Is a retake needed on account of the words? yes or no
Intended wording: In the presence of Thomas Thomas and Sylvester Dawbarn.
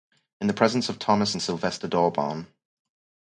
yes